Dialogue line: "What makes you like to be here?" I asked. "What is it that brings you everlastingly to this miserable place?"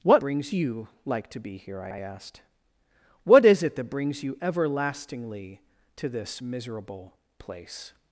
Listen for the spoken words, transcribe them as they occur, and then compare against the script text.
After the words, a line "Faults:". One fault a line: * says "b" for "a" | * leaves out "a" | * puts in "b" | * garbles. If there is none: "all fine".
"What brings you like to be here?" I I asked. "What is it that brings you everlastingly to this miserable place?"
Faults:
* says "brings" for "makes"
* puts in "I"